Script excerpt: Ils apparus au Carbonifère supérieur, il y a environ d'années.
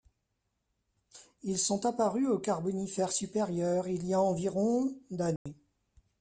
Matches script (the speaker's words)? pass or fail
fail